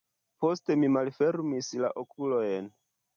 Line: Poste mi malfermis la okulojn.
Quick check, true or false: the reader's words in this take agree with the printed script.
true